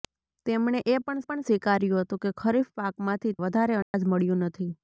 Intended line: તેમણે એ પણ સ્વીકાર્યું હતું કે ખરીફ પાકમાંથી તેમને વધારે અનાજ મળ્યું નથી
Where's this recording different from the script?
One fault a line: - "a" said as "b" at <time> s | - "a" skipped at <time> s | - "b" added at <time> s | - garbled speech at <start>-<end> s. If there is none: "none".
- "પણ" added at 1.2 s
- "તેમને" skipped at 3.3 s